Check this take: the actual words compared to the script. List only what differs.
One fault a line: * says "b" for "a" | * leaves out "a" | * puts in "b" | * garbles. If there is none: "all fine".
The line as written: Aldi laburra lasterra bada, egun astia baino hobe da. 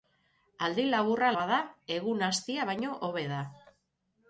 * leaves out "lasterra"